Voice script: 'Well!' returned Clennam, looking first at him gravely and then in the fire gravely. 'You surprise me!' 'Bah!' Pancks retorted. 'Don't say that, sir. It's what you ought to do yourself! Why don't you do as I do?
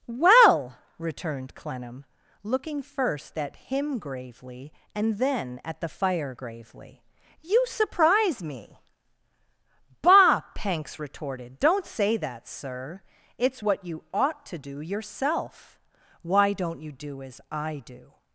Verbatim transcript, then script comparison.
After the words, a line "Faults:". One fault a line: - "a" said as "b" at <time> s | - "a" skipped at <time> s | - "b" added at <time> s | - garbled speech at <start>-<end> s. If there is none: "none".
'Well!' returned Clennam, looking first at him gravely and then at the fire gravely. 'You surprise me!' 'Bah!' Pancks retorted. 'Don't say that, sir. It's what you ought to do yourself! Why don't you do as I do?
Faults:
- "in" said as "at" at 5.6 s